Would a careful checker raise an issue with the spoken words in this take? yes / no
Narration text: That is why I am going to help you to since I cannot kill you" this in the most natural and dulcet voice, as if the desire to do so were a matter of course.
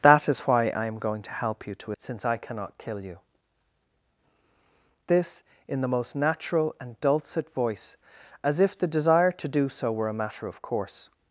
no